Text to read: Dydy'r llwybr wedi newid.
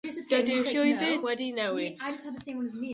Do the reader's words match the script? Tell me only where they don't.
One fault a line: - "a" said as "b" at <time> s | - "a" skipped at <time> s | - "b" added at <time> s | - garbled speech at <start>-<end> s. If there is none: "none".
none